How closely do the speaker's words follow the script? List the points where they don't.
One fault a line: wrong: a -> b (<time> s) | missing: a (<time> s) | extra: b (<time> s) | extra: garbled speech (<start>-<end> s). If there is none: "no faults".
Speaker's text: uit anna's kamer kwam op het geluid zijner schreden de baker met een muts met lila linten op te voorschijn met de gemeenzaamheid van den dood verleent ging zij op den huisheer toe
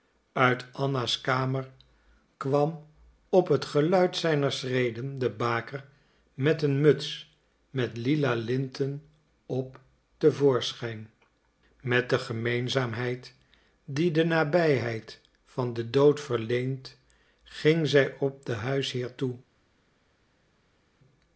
extra: die de nabijheid (13.8 s)